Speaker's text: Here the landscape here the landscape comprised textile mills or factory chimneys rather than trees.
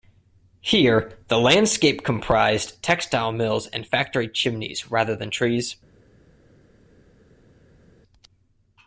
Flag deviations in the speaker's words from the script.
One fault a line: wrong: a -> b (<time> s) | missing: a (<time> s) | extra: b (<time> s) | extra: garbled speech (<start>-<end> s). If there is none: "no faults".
missing: here the landscape (2.0 s)
wrong: or -> and (3.7 s)